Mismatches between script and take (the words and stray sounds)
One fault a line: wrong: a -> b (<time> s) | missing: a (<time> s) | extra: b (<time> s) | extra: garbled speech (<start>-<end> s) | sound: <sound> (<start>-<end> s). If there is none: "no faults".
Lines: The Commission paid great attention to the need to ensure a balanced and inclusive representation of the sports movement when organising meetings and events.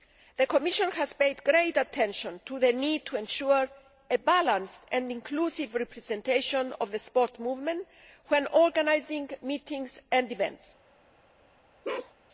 extra: has (0.9 s)
sound: bark (11.8-12.1 s)